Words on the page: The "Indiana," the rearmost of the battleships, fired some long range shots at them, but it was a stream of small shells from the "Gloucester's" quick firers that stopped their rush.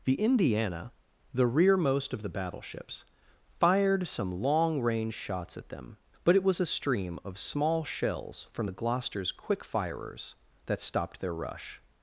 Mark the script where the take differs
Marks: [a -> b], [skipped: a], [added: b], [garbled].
The "Indiana," the rearmost of the battleships, fired some long range shots at them, but it was a stream of small shells from the "Gloucester's" quick firers that stopped their rush.